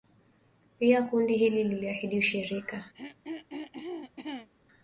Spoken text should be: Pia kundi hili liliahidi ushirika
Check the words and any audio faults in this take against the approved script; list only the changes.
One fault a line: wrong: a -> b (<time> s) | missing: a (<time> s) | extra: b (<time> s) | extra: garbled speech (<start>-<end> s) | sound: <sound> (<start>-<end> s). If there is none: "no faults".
sound: throat clearing (2.9-4.5 s)